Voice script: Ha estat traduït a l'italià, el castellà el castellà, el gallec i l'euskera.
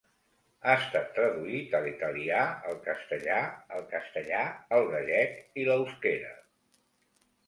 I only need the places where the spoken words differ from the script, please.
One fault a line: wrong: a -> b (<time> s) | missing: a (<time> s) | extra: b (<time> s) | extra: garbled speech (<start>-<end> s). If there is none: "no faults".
no faults